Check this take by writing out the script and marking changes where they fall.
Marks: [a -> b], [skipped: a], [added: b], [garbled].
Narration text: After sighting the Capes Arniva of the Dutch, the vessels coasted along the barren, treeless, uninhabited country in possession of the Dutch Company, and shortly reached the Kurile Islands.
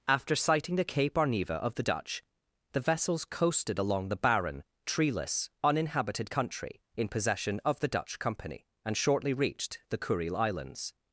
After sighting the [Capes -> Cape] Arniva of the Dutch, the vessels coasted along the barren, treeless, uninhabited country in possession of the Dutch Company, and shortly reached the Kurile Islands.